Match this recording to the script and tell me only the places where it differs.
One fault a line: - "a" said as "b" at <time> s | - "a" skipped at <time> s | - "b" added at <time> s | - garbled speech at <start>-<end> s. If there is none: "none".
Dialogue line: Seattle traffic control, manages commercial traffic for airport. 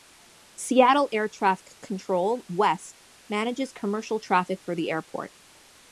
- "air" added at 1.1 s
- "west" added at 2.5 s
- "the" added at 4.7 s